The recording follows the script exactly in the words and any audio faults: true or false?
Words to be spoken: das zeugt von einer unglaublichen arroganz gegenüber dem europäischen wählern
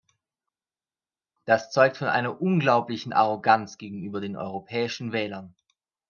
false